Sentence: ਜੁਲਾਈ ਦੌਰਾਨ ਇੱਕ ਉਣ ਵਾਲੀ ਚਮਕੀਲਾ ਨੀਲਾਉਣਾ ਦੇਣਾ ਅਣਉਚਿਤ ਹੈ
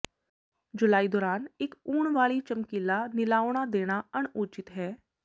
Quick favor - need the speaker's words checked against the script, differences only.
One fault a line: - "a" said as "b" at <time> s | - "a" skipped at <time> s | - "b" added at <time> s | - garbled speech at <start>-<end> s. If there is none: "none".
none